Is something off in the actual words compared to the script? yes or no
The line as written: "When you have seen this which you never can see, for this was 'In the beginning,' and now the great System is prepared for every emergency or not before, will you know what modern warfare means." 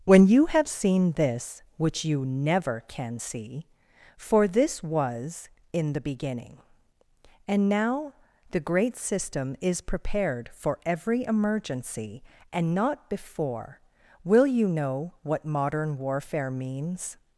yes